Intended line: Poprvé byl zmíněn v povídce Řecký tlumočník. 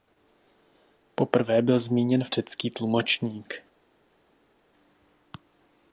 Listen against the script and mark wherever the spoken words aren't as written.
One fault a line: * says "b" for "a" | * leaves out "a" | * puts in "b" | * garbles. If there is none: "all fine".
* leaves out "povídce"